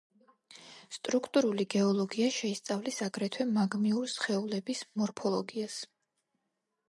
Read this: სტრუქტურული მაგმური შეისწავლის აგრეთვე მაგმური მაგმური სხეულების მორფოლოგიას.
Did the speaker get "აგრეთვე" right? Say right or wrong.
right